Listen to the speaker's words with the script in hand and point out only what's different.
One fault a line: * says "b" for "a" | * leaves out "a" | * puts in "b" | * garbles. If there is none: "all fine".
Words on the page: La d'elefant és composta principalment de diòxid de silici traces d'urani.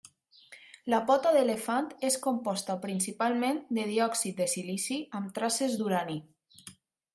* puts in "pota"
* puts in "amb"